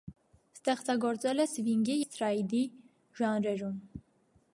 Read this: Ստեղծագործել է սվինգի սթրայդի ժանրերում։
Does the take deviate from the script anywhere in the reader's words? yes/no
no